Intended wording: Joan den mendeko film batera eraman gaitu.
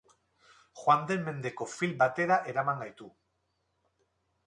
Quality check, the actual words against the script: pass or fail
pass